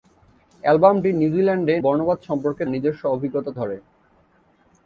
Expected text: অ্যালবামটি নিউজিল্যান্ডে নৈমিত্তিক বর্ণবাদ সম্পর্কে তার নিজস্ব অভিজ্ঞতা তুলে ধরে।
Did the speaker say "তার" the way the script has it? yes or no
no